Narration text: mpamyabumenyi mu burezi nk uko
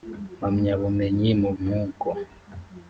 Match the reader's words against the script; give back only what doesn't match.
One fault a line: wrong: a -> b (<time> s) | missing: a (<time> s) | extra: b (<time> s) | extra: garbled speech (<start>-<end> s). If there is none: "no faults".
missing: burezi (1.5 s)